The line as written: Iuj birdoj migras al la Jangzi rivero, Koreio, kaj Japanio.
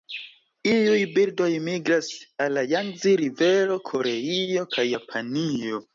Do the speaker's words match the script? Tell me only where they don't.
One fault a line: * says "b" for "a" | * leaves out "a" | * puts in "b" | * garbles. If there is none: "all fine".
all fine